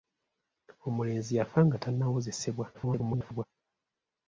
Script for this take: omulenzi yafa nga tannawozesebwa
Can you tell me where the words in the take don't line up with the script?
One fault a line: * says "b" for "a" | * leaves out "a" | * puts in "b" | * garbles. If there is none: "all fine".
* garbles